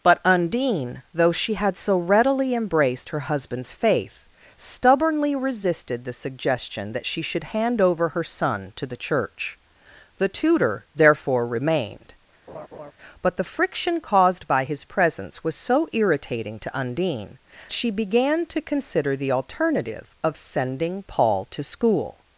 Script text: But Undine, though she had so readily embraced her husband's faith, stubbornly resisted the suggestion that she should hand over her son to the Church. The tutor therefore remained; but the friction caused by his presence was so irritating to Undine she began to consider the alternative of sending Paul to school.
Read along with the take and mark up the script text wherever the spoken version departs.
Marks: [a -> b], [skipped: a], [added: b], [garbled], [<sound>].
But Undine, though she had so readily embraced her husband's faith, stubbornly resisted the suggestion that she should hand over her son to the Church. The tutor therefore remained; [laugh] but the friction caused by his presence was so irritating to Undine she began to consider the alternative of sending Paul to school.